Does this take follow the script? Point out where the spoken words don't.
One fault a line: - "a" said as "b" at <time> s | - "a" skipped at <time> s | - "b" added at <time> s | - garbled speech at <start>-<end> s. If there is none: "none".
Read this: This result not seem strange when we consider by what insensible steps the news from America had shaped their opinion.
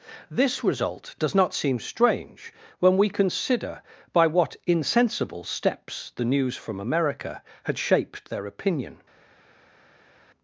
- "does" added at 1.2 s